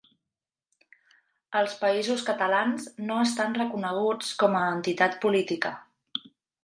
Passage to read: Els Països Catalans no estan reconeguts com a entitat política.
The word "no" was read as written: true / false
true